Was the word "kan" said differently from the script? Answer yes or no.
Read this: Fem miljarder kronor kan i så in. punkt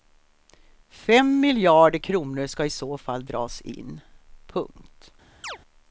yes